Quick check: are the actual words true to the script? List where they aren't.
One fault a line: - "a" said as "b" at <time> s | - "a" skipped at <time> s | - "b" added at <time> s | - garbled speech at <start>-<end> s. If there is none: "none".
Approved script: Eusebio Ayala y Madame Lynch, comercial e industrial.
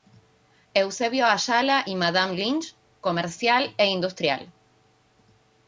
none